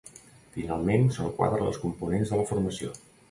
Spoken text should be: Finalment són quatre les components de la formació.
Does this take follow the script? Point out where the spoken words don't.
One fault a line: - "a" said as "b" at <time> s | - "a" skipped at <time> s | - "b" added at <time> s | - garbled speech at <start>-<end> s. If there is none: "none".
none